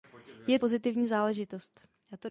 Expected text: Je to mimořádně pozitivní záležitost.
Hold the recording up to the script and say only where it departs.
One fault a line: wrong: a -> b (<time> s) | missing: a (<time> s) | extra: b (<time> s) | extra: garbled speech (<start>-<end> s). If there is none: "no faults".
missing: to mimořádně (0.6 s)